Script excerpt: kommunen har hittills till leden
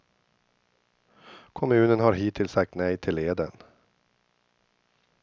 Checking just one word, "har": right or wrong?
right